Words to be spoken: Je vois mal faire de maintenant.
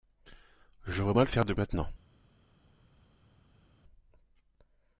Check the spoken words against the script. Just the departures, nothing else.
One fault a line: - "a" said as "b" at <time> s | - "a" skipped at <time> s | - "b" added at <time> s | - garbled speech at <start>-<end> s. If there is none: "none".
none